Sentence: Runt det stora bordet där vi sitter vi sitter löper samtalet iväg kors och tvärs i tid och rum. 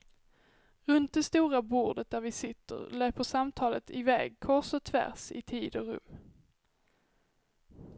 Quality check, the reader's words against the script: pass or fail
fail